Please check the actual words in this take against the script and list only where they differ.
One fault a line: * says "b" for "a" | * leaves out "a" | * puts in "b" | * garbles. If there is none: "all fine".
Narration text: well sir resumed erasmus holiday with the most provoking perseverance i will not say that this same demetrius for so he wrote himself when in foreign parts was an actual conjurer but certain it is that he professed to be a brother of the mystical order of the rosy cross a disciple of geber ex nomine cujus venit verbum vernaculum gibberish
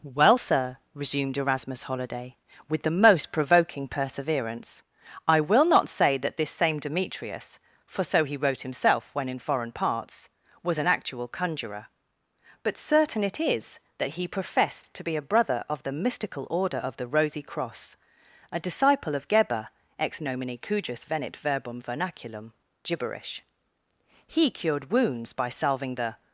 * puts in "he cured wounds by salving the"